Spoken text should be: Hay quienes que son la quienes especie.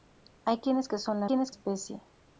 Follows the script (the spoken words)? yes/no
yes